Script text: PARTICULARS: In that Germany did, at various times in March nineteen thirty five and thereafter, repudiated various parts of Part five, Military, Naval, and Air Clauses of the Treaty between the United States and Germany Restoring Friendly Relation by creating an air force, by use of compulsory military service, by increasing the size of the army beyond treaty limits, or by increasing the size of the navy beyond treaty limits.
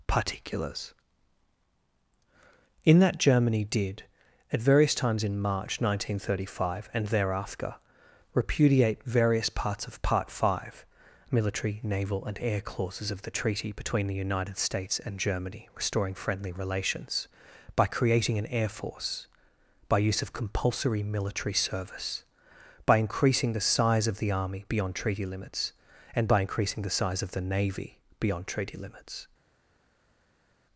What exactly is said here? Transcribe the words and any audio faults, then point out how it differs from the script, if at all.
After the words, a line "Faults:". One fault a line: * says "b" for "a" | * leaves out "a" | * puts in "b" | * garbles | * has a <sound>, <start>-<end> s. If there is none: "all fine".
PARTICULARS: In that Germany did, at various times in March nineteen thirty five and thereafter, repudiate various parts of Part five, Military, Naval, and Air Clauses of the Treaty between the United States and Germany Restoring Friendly Relations by creating an air force, by use of compulsory military service, by increasing the size of the army beyond treaty limits, and by increasing the size of the navy beyond treaty limits.
Faults:
* says "repudiate" for "repudiated"
* says "Relations" for "Relation"
* says "and" for "or"